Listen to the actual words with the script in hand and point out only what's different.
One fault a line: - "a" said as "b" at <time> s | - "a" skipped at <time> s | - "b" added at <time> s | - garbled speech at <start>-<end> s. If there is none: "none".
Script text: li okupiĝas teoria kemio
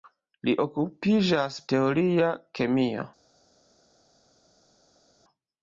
none